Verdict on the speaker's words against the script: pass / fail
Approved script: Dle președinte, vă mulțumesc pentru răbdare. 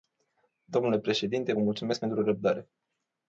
fail